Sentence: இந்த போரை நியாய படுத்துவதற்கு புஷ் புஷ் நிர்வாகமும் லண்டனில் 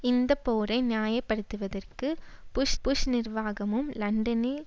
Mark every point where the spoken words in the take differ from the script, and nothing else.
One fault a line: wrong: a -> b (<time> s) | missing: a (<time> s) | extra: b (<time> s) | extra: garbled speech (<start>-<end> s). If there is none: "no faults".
no faults